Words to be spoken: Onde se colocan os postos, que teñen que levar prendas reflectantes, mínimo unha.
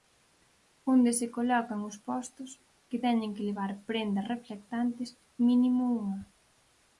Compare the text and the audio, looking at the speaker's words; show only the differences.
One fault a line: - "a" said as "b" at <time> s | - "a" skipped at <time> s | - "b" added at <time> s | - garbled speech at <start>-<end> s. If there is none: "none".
none